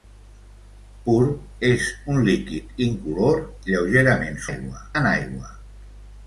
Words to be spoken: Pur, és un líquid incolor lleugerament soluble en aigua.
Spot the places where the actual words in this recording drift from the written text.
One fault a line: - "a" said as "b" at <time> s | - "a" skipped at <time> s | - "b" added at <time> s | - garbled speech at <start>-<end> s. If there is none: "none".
- "soluble" said as "aigua" at 4.5 s